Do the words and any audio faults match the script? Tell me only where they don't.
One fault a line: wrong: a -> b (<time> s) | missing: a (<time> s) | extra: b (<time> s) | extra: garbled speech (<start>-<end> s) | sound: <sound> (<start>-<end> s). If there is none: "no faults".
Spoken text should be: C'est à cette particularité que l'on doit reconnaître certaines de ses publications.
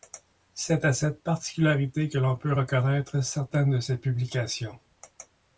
wrong: doit -> peut (2.4 s)